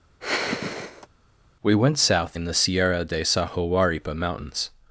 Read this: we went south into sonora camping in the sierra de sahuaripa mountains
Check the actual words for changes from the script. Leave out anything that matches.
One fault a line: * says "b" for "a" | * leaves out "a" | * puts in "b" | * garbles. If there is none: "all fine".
* leaves out "into sonora camping"